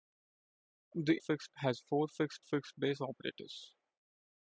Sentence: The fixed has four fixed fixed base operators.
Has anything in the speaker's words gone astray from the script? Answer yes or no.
no